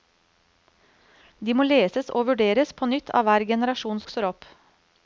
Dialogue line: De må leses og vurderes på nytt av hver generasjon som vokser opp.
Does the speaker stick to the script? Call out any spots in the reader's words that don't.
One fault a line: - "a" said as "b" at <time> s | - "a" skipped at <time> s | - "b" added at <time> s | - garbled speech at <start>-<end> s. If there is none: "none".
- "som" skipped at 4.0 s